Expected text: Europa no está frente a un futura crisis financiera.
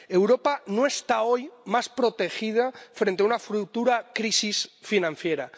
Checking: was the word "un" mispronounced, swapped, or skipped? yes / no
yes